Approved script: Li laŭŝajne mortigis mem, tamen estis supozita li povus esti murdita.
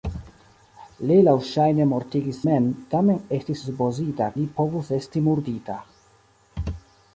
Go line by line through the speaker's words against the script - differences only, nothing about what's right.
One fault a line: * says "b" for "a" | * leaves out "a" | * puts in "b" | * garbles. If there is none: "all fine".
all fine